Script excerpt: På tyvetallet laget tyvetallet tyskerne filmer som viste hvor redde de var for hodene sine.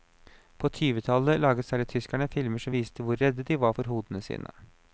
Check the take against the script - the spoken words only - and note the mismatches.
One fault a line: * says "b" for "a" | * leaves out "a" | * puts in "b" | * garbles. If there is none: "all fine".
* says "særlig" for "tyvetallet"